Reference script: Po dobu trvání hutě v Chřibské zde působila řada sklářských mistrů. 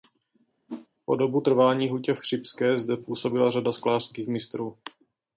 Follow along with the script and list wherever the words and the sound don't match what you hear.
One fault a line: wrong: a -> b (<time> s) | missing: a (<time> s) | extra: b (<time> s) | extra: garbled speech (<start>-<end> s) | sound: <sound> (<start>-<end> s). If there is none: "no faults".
sound: whoosh (0.7-0.9 s)